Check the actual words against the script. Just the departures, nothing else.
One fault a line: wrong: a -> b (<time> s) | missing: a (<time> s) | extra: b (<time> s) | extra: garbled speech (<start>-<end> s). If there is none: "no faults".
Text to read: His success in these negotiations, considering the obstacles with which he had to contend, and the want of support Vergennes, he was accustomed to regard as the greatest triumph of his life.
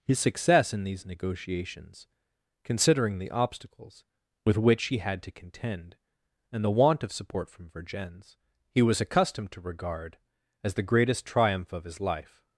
extra: from (7.5 s)